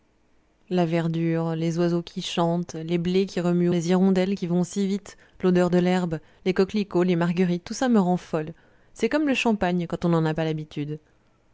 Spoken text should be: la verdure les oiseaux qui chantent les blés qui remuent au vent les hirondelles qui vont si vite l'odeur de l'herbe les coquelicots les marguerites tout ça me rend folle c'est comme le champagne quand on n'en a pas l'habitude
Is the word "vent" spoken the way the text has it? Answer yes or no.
no